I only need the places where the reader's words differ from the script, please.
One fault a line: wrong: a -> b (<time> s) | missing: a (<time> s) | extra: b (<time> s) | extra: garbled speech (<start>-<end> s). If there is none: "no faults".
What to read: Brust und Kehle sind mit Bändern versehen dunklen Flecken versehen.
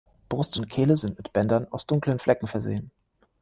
wrong: versehen -> aus (1.7 s)